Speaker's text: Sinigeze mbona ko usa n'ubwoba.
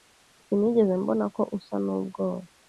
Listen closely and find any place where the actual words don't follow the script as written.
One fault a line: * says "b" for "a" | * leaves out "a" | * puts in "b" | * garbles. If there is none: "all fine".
all fine